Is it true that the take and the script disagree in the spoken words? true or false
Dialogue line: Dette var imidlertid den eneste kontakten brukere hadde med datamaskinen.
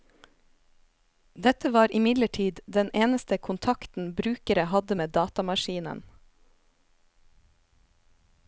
false